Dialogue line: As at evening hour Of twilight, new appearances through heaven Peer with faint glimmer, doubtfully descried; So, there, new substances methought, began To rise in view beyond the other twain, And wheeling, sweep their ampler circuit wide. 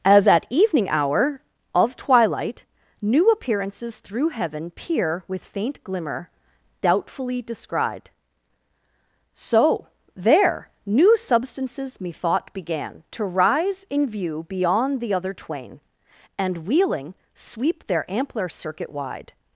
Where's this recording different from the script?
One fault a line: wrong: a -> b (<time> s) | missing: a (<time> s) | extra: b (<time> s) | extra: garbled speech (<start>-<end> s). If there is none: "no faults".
no faults